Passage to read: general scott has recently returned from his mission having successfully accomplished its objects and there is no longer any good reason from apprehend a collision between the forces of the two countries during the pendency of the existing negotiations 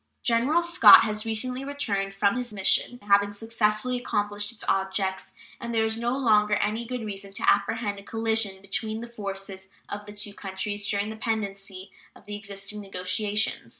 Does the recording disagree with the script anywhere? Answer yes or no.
yes